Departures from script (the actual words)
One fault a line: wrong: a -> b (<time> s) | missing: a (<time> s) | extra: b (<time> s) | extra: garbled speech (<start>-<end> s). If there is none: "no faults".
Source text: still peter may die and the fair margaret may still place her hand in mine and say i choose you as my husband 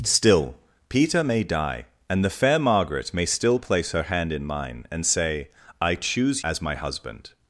missing: you (6.4 s)